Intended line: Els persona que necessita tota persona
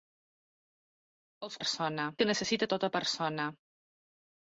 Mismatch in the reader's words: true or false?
false